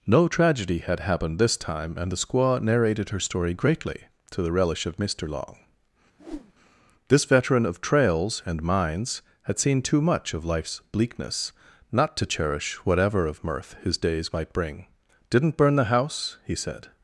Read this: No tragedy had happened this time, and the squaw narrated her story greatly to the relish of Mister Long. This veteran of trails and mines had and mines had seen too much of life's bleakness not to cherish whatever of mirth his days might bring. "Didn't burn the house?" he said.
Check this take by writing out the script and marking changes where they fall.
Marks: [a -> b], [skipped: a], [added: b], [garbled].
No tragedy had happened this time, and the squaw narrated her story greatly to the relish of Mister Long. This veteran of trails and mines had [skipped: and mines had] seen too much of life's bleakness not to cherish whatever of mirth his days might bring. "Didn't burn the house?" he said.